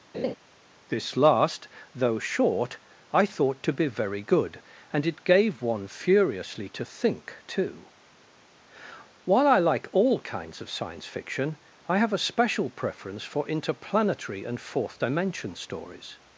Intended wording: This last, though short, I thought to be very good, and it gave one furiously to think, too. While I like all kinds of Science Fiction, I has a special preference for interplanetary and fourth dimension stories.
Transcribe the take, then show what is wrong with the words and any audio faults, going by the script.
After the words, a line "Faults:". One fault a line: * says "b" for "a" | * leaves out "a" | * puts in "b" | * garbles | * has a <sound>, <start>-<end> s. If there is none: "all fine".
This last, though short, I thought to be very good, and it gave one furiously to think, too. While I like all kinds of Science Fiction, I have a special preference for interplanetary and fourth dimension stories.
Faults:
* has a laugh, 0.1-0.4 s
* says "have" for "has"